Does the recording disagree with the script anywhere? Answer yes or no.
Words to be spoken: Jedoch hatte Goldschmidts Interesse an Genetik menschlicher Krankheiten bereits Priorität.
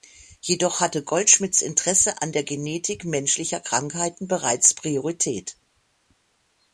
yes